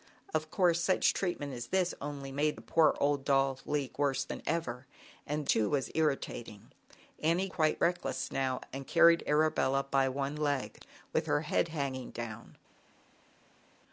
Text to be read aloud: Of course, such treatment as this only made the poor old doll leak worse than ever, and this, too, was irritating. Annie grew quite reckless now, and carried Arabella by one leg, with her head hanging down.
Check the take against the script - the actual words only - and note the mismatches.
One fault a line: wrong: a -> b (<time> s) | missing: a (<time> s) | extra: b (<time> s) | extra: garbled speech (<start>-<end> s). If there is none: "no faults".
missing: this (5.4 s)
missing: grew (7.5 s)